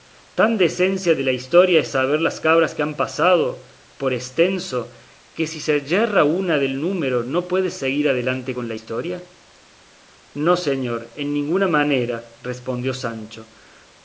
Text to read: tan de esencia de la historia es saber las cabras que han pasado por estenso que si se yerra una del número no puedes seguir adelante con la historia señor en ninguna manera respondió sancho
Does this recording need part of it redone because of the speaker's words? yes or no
yes